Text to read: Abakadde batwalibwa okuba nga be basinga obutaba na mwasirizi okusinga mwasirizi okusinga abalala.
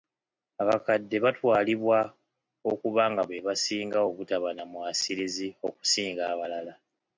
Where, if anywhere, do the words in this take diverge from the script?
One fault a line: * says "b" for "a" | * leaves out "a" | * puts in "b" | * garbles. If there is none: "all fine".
* leaves out "mwasirizi okusinga"